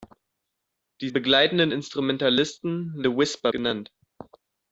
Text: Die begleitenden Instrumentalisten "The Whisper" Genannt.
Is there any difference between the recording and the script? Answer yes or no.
no